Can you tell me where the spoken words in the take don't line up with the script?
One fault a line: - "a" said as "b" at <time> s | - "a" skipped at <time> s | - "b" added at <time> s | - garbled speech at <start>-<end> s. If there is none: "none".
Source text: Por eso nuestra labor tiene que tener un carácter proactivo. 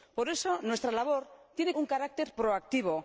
- "que tener" skipped at 1.7 s